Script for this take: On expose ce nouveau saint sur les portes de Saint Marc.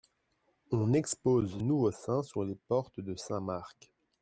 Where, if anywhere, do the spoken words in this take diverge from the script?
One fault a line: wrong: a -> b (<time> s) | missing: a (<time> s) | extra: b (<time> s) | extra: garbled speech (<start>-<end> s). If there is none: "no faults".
missing: ce (1.6 s)